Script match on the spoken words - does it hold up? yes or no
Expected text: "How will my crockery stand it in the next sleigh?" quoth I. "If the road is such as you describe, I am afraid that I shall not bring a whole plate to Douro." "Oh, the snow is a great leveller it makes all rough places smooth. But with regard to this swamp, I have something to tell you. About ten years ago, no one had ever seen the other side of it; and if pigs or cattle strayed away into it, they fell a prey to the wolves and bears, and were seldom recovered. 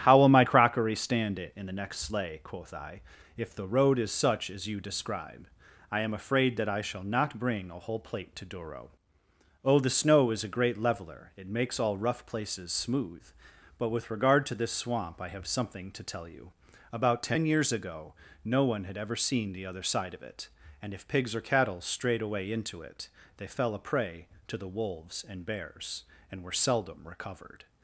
yes